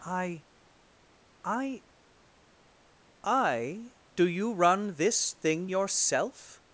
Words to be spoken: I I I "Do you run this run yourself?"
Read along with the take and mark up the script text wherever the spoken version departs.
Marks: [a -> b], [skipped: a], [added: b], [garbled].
I I I "Do you run this [run -> thing] yourself?"